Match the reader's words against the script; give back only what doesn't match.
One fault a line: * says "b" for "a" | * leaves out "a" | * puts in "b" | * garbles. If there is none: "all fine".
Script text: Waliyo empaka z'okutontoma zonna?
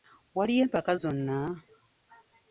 * leaves out "z'okutontoma"